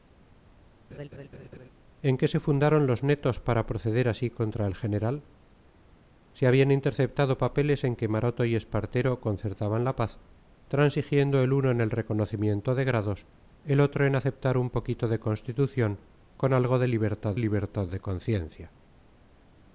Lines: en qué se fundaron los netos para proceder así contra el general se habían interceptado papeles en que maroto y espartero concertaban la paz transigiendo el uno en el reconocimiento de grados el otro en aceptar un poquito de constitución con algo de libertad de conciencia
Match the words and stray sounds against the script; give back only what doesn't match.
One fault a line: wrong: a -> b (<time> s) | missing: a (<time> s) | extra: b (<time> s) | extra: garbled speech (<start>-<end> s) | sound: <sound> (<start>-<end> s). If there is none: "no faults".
sound: laugh (0.9-1.7 s)
extra: libertad (17.4 s)